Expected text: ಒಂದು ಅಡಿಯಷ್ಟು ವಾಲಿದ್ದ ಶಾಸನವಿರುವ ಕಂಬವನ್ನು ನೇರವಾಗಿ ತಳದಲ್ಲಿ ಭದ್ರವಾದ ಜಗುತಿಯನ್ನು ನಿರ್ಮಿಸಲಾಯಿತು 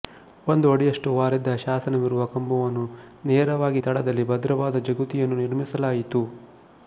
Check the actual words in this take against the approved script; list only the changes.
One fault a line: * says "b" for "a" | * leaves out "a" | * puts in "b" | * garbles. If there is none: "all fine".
all fine